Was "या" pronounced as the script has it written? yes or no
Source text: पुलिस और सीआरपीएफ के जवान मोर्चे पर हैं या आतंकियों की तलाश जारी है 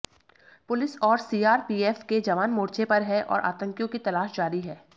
no